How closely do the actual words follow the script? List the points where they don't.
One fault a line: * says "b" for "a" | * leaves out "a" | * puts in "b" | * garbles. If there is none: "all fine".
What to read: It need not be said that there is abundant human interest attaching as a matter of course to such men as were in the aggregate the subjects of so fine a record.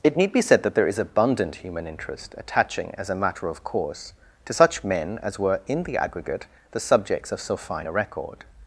* leaves out "not"